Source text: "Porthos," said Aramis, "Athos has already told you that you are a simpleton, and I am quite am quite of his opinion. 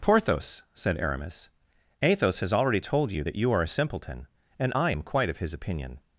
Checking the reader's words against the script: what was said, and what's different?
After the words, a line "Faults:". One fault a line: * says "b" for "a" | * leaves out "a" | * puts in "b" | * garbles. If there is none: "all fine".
"Porthos," said Aramis, "Athos has already told you that you are a simpleton, and I am quite of his opinion.
Faults:
* leaves out "am quite"